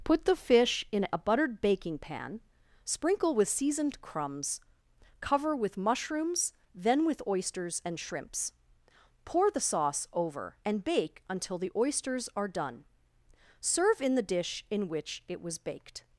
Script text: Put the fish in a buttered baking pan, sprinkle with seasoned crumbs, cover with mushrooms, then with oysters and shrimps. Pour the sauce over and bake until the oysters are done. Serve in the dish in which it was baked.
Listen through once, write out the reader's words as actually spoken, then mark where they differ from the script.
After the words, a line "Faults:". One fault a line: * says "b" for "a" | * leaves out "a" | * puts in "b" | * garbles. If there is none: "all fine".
Put the fish in a buttered baking pan, sprinkle with seasoned crumbs, cover with mushrooms, then with oysters and shrimps. Pour the sauce over and bake until the oysters are done. Serve in the dish in which it was baked.
Faults:
all fine